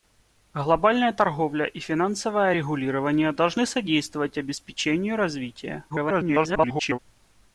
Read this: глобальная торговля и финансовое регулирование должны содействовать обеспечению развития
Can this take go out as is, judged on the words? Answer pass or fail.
fail